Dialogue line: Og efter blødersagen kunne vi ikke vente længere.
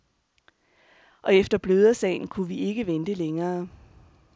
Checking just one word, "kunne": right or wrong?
right